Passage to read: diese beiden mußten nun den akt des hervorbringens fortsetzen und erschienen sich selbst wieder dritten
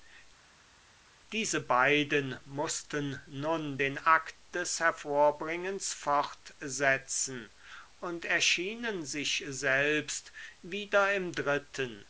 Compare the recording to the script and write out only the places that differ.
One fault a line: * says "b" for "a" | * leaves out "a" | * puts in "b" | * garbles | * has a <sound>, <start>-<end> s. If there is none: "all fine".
* puts in "im"